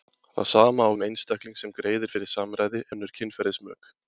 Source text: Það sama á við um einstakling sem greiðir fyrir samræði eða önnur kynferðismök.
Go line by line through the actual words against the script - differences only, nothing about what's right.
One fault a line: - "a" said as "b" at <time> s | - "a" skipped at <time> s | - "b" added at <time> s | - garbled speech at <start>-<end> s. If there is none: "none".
- "við" skipped at 0.9 s
- "eða" skipped at 2.8 s